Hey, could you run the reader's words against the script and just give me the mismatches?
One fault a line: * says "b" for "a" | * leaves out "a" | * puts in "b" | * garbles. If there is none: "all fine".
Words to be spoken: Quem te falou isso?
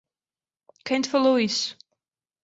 all fine